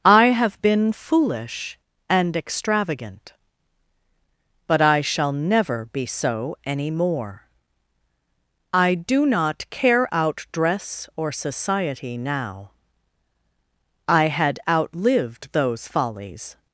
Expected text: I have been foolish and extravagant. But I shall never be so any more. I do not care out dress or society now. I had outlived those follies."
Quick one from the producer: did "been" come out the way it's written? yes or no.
yes